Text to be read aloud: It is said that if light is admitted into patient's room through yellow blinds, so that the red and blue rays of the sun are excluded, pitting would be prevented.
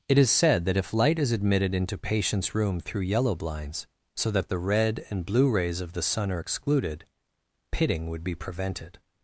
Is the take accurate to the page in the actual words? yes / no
yes